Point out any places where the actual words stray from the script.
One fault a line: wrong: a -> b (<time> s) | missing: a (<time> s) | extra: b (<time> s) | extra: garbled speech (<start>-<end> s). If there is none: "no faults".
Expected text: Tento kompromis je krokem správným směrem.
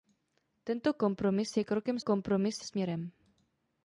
wrong: správným -> kompromis (2.0 s)